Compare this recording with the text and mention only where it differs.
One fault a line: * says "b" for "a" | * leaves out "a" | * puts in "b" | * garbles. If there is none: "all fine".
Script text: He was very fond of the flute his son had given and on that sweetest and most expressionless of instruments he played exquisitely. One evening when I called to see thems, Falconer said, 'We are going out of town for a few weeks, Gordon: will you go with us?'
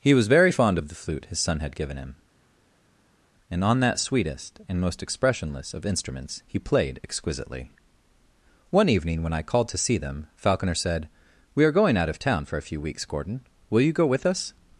* puts in "him"
* says "them" for "thems"